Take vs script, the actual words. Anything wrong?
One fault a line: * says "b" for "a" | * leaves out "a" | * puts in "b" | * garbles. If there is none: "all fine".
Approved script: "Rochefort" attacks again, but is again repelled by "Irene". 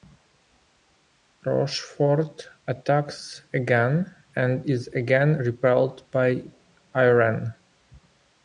* says "and" for "but"